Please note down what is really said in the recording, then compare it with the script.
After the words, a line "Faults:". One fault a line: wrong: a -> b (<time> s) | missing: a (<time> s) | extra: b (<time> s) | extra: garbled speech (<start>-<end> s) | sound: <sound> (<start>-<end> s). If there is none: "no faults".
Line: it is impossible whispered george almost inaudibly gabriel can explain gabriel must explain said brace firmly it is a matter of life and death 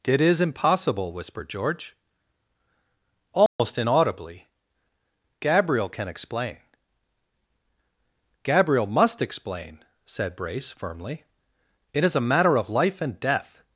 it is impossible whispered george almost inaudibly gabriel can explain gabriel must explain said brace firmly it is a matter of life and death
Faults:
sound: dropout (3.5-3.6 s)